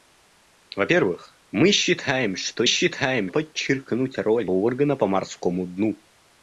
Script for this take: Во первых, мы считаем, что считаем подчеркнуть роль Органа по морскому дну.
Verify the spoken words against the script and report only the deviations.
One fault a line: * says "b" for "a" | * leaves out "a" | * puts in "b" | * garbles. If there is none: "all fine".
all fine